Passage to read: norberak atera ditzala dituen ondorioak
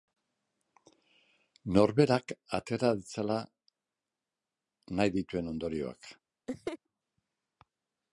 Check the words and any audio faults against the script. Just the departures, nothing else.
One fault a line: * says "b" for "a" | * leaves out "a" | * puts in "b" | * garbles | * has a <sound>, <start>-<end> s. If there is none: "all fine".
* puts in "nahi"
* has a laugh, 6.5-6.8 s